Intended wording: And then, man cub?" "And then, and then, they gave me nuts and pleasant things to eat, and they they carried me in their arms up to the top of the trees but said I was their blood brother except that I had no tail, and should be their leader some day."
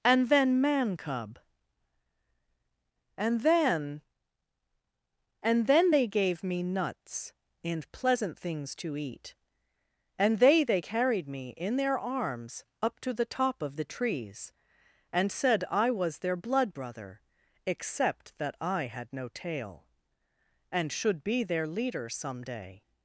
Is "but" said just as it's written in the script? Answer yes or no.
no